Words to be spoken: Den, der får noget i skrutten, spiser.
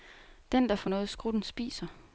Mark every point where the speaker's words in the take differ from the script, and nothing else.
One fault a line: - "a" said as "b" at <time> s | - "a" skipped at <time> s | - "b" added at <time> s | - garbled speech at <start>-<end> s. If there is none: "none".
none